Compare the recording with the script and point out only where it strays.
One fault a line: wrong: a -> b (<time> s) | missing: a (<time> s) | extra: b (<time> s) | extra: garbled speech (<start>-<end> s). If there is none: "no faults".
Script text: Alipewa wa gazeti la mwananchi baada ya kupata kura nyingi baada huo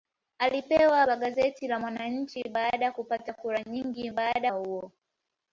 no faults